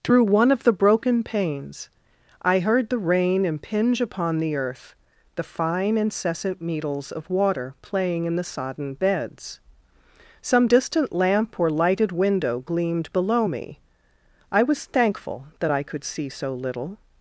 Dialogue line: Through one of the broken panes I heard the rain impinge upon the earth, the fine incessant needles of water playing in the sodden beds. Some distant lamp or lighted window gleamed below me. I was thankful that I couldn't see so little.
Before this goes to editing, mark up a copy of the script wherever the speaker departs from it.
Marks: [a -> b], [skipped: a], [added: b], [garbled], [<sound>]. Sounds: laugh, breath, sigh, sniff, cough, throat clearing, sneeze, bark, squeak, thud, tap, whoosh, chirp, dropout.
Through one of the broken panes I heard the rain impinge upon the earth, the fine incessant needles of water playing in the sodden beds. Some distant lamp or lighted window gleamed below me. I was thankful that I [couldn't -> could] see so little.